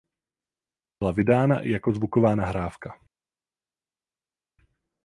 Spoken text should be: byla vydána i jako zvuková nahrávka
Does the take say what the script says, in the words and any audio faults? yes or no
yes